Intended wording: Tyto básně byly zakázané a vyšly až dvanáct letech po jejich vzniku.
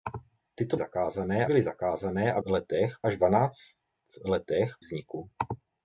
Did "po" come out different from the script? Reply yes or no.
yes